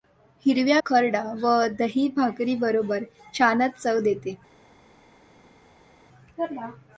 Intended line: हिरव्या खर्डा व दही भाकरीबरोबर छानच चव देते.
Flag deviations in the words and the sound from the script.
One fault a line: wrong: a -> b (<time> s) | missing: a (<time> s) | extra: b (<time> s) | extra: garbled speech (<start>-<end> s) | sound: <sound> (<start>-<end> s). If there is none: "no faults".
no faults